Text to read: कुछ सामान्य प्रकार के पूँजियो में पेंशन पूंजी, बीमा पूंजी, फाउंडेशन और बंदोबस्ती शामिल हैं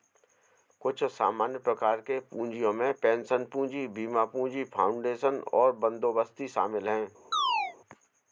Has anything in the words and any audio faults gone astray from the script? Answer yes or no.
yes